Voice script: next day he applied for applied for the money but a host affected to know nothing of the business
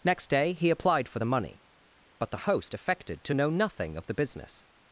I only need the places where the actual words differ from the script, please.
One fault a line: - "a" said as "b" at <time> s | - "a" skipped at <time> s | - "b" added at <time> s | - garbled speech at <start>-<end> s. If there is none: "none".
- "applied for" skipped at 1.2 s
- "a" said as "the" at 2.3 s